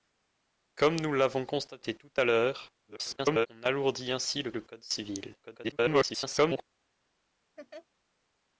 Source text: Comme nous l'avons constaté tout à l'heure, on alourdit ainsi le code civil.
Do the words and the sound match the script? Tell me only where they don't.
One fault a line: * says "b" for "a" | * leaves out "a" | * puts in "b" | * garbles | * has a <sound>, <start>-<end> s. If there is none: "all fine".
* garbles
* puts in "le"
* garbles
* has a laugh, 7.6-7.9 s